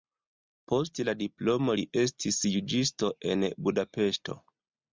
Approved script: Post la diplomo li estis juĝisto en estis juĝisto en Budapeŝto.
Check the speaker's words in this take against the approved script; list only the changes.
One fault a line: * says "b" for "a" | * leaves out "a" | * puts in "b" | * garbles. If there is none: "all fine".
* leaves out "estis juĝisto en"